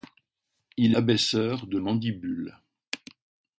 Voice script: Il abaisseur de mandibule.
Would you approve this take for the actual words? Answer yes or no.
yes